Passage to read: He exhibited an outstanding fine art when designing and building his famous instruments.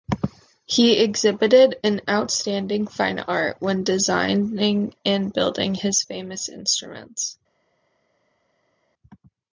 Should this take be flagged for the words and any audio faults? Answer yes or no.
no